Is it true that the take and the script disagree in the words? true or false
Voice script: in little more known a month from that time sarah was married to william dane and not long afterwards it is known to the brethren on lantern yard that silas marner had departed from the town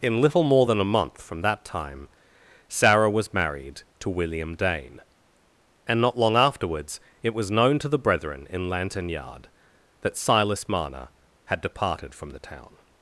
true